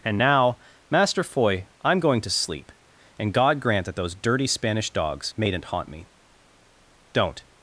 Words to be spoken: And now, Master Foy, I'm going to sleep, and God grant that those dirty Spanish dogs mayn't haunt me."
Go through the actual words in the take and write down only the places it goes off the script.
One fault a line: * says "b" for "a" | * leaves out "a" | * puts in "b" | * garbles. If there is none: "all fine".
* puts in "Don't"